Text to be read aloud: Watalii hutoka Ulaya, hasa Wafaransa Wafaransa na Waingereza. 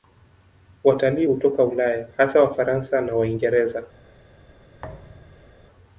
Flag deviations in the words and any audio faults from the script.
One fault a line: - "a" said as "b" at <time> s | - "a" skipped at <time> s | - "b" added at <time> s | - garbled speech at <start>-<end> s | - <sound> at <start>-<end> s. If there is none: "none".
- "Wafaransa" skipped at 3.0 s
- thud at 4.8-5.6 s